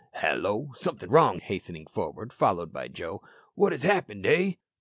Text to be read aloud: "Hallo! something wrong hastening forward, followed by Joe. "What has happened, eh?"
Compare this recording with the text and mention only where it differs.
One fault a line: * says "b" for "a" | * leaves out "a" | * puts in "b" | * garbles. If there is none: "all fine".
all fine